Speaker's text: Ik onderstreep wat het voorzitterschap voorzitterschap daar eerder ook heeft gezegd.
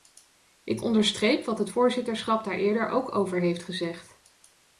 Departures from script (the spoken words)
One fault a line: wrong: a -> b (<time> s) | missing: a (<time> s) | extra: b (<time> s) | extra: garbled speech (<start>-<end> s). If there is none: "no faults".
missing: voorzitterschap (2.4 s)
extra: over (3.1 s)